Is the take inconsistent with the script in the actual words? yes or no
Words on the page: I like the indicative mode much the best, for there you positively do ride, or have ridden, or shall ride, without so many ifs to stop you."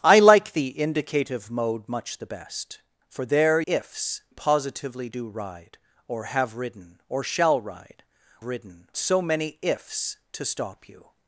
yes